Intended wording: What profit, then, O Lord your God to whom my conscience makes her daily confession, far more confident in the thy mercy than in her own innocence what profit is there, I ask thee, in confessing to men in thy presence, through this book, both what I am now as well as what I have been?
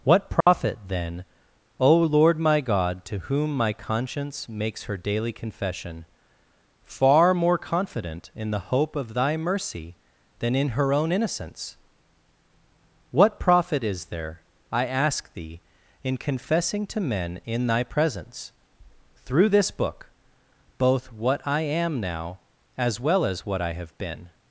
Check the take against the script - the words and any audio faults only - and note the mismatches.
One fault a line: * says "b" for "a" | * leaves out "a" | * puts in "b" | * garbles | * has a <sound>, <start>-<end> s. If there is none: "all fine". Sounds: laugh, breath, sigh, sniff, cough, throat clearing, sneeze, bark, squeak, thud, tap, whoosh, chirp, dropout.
* has a dropout, 0.4-0.5 s
* says "my" for "your"
* puts in "hope of"